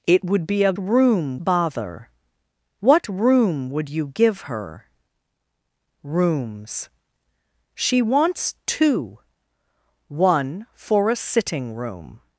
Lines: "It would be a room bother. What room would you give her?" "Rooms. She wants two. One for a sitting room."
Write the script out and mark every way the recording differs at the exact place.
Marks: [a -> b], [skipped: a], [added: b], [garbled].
"It would be a room bother. What room would you give her?" "Rooms. She wants two. One for a sitting room."